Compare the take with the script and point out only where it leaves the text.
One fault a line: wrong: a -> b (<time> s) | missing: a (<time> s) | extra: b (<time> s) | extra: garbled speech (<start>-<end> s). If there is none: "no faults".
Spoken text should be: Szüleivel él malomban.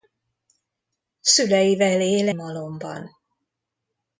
no faults